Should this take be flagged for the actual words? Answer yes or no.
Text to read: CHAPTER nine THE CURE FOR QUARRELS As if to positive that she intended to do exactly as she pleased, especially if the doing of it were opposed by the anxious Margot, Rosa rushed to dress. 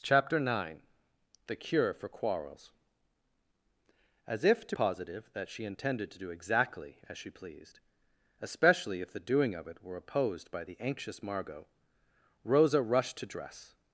no